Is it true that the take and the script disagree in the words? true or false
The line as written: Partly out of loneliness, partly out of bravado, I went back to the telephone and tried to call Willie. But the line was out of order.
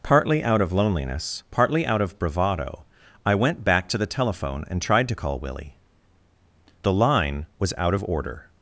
true